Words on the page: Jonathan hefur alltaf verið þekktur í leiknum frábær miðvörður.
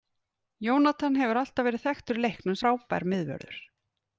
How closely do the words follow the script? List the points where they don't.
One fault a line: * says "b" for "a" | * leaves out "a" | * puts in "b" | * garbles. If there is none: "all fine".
all fine